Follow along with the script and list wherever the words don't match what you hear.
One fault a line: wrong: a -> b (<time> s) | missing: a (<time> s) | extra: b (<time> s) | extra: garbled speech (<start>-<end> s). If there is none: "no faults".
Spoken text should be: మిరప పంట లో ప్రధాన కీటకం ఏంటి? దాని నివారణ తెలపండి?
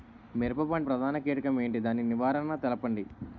missing: లో (0.9 s)